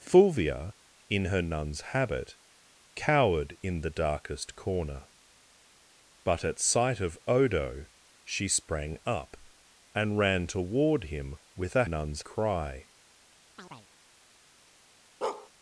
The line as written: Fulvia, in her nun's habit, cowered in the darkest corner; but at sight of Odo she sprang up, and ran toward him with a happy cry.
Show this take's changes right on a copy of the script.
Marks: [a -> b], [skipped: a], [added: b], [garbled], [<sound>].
Fulvia, in her nun's habit, cowered in the darkest corner; but at sight of Odo she sprang up, and ran toward him with a [happy -> nun's] cry. [chirp] [bark]